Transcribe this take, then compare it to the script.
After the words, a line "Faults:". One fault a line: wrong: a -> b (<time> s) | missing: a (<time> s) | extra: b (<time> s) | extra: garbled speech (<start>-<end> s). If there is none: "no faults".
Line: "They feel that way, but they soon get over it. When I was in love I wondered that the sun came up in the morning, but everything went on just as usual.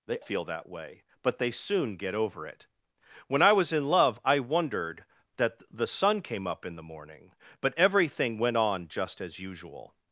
"They feel that way, but they soon get over it. When I was in love I wondered that the sun came up in the morning, but everything went on just as usual.
Faults:
no faults